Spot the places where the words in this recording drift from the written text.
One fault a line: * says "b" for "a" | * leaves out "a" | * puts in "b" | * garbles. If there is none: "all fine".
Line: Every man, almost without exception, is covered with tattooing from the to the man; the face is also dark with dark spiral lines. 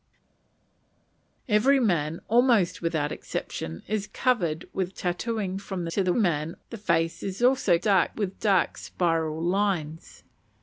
all fine